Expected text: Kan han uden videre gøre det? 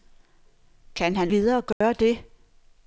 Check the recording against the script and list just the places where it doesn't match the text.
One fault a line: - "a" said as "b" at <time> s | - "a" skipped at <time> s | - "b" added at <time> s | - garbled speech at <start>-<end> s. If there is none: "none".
- "uden" skipped at 1.3 s